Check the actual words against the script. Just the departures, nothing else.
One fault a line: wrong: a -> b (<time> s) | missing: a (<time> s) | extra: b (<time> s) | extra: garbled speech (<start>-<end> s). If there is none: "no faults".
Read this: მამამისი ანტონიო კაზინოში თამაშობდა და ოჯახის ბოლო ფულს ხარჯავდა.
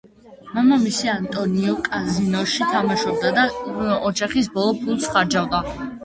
no faults